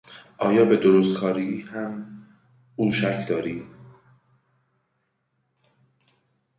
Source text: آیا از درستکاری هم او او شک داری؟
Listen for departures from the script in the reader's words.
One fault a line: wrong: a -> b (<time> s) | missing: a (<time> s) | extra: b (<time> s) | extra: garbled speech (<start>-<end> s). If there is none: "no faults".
wrong: از -> به (0.7 s)
missing: او (2.9 s)